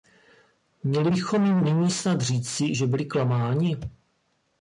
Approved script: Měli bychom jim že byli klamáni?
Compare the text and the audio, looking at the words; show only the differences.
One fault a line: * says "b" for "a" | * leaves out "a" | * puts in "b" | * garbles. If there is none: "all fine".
* puts in "nyní snad říci"